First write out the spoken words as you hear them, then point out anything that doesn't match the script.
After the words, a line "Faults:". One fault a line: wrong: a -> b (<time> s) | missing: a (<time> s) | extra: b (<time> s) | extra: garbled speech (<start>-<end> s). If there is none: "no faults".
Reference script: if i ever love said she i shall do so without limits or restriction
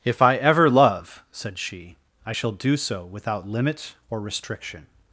if i ever love said she i shall do so without limit or restriction
Faults:
wrong: limits -> limit (3.5 s)